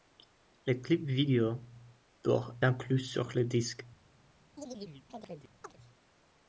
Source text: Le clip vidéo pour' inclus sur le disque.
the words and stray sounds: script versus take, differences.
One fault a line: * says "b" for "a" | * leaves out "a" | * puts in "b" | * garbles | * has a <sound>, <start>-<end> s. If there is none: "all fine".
* has a chirp, 4.6-5.8 s